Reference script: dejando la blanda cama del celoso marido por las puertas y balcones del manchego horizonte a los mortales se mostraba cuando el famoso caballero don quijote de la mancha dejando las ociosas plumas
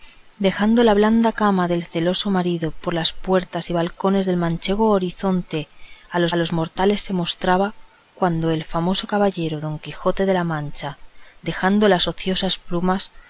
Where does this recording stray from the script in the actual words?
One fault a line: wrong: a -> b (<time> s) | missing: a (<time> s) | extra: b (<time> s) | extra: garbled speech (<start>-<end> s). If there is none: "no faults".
extra: los (6.3 s)